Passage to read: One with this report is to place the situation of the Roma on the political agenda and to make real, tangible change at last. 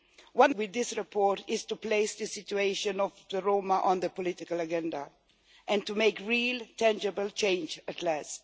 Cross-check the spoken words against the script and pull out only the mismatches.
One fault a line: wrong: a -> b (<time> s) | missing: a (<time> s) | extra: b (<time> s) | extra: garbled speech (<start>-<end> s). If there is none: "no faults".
no faults